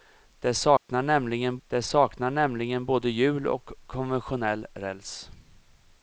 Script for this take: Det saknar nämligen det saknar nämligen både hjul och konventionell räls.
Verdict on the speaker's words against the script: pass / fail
pass